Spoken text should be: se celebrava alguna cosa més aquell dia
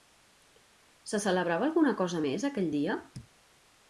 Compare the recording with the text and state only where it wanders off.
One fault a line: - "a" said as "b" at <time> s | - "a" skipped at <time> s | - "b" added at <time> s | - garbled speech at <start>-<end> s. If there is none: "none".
none